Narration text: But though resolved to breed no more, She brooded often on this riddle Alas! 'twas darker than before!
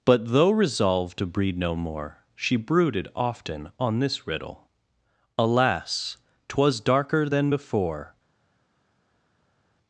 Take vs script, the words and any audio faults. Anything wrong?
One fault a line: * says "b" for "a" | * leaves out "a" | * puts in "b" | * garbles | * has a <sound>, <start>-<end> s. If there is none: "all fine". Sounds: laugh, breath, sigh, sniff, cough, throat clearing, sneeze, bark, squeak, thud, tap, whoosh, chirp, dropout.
all fine